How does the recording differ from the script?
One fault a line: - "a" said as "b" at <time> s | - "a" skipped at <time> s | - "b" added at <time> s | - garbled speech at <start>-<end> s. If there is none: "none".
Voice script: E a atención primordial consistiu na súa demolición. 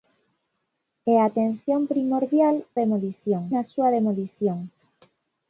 - "consistiu" said as "demolición" at 2.8 s